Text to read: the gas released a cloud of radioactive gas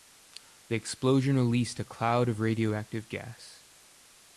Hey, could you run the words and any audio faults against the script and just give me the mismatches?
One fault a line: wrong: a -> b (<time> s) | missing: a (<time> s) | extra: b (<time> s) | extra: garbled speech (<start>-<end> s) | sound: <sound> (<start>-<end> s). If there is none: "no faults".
wrong: gas -> explosion (0.8 s)